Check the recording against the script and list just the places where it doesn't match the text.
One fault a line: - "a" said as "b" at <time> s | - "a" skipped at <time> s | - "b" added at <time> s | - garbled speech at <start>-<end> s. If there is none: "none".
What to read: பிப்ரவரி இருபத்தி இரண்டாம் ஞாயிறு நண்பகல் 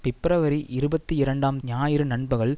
none